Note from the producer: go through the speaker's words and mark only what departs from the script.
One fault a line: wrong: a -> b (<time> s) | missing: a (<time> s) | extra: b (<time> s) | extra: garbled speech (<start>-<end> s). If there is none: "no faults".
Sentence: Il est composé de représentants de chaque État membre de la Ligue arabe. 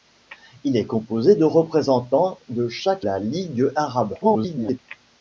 missing: État membre de (3.0 s)
extra: garbled speech (4.2-4.8 s)